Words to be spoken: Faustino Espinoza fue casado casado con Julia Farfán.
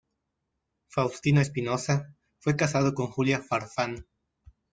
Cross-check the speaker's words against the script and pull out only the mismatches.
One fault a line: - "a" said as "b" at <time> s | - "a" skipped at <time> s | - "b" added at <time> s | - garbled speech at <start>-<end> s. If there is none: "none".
- "casado" skipped at 2.9 s